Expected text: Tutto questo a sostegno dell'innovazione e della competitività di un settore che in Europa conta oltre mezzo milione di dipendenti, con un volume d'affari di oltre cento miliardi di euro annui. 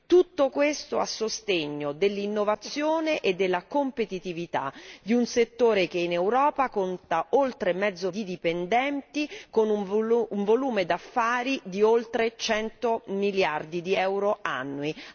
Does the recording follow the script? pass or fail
fail